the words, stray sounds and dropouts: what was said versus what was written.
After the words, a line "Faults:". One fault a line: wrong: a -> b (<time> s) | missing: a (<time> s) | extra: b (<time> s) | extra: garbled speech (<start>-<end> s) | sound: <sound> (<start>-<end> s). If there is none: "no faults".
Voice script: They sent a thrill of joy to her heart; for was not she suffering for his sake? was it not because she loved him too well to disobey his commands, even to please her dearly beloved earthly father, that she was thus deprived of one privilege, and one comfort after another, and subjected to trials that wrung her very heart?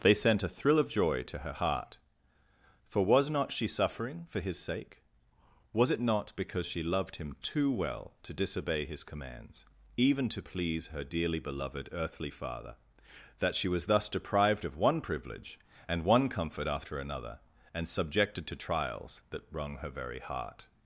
They sent a thrill of joy to her heart; for was not she suffering for his sake? was it not because she loved him too well to disobey his commands, even to please her dearly beloved earthly father, that she was thus deprived of one privilege, and one comfort after another, and subjected to trials that wrung her very heart?
Faults:
no faults